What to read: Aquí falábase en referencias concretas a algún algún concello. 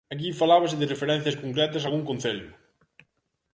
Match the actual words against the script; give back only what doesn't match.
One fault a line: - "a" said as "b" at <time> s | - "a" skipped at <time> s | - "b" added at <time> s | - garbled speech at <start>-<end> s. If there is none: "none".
- "en" said as "de" at 0.8 s
- "algún" skipped at 2.0 s